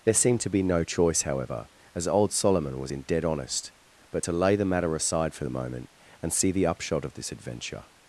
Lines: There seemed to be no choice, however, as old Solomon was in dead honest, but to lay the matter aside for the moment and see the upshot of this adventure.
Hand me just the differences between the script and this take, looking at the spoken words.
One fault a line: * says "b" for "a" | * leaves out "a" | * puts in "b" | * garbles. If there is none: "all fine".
all fine